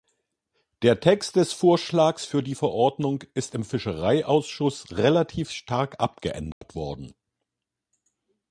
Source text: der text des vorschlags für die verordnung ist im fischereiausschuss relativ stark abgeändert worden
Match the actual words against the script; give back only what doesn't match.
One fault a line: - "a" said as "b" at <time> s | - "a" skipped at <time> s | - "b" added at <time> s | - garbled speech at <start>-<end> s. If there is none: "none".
none